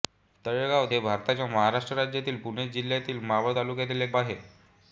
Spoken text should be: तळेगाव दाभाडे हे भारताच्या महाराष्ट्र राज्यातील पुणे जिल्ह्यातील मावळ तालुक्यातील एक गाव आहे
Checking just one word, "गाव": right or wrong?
wrong